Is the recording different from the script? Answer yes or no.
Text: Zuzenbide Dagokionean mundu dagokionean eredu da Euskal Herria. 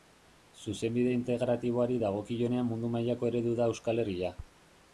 yes